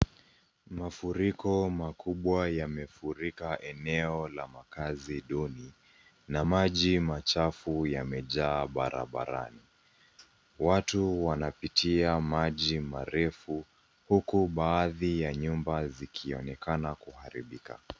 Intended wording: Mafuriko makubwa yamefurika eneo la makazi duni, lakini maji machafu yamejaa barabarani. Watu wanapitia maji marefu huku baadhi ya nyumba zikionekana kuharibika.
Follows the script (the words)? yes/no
no